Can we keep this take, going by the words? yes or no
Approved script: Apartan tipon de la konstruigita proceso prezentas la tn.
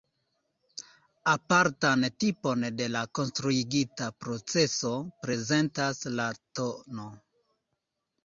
yes